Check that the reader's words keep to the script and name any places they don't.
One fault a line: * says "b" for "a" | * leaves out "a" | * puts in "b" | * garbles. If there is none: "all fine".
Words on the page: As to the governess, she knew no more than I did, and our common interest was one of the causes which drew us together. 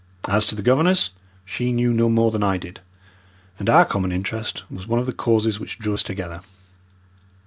all fine